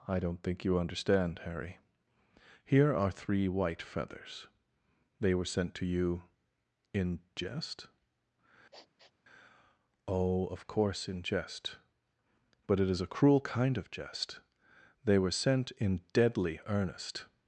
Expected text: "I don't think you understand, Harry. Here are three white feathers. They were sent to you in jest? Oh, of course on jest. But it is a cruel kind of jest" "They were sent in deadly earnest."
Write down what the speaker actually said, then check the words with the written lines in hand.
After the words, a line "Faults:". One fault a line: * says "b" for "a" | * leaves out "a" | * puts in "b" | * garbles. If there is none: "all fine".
"I don't think you understand, Harry. Here are three white feathers. They were sent to you in jest? Oh, of course in jest. But it is a cruel kind of jest" "They were sent in deadly earnest."
Faults:
* says "in" for "on"